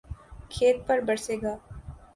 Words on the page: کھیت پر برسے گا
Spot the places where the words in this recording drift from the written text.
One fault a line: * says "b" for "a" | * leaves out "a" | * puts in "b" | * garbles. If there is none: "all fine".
all fine